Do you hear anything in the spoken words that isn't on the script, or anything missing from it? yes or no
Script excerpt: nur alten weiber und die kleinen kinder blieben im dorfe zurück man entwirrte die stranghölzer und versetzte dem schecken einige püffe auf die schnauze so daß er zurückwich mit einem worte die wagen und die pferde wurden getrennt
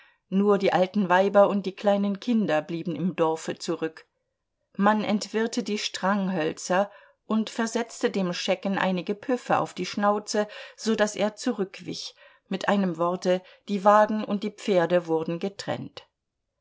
yes